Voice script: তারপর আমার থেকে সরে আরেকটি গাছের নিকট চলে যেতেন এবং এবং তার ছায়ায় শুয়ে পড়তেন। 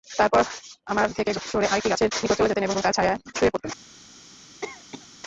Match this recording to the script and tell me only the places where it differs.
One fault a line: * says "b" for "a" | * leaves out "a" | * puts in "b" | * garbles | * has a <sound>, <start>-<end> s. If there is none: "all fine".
* has a cough, 4.6-5.1 s